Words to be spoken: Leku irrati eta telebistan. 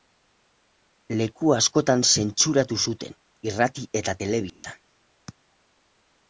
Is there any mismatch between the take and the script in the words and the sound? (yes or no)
yes